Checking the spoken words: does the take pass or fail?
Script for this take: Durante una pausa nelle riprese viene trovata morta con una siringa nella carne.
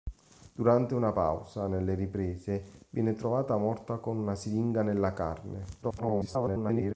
fail